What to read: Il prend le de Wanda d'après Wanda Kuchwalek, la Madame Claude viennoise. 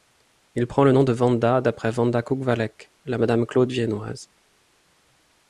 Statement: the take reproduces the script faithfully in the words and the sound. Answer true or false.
false